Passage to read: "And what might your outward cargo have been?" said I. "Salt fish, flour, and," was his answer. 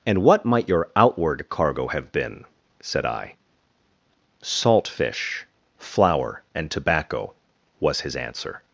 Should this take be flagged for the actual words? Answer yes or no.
yes